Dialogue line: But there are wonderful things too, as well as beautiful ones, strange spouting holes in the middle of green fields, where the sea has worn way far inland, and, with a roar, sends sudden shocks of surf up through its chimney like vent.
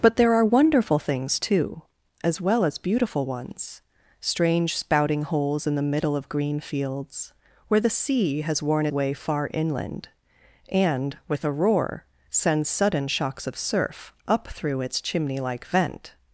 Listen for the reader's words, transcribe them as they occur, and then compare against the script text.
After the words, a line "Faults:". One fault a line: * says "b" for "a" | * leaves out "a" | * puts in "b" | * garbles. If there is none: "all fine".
But there are wonderful things too, as well as beautiful ones, strange spouting holes in the middle of green fields, where the sea has worn way far inland, and, with a roar, sends sudden shocks of surf up through its chimney like vent.
Faults:
all fine